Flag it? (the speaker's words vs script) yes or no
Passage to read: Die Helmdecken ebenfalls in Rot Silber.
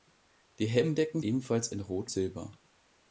no